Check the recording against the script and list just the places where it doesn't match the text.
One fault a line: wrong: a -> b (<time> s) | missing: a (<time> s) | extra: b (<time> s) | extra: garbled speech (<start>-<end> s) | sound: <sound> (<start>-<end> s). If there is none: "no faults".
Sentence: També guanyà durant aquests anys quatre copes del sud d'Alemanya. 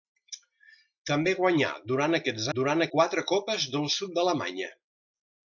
wrong: anys -> durant (2.6 s)